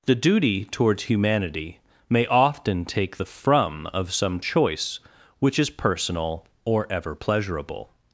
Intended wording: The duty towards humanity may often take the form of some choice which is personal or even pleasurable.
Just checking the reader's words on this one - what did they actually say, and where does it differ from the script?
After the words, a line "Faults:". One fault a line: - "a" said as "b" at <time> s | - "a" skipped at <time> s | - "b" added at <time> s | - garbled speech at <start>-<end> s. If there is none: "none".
The duty towards humanity may often take the from of some choice which is personal or ever pleasurable.
Faults:
- "form" said as "from" at 3.3 s
- "even" said as "ever" at 6.9 s